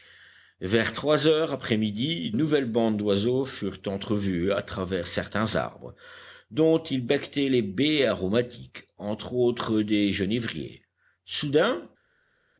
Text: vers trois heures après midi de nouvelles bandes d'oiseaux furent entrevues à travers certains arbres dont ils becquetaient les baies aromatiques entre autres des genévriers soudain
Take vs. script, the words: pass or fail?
fail